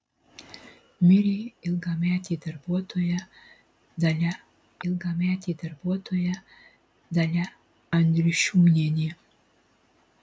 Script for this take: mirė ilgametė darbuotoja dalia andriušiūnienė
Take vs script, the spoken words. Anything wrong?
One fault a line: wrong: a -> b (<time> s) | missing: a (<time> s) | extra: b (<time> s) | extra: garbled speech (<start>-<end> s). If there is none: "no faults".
extra: ilgametė darbuotoja dalia (4.9 s)